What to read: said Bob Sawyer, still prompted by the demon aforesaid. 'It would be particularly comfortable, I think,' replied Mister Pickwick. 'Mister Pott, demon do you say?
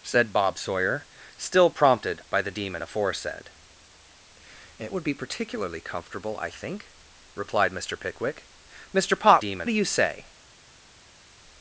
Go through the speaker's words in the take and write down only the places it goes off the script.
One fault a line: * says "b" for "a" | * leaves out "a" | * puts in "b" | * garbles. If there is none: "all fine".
all fine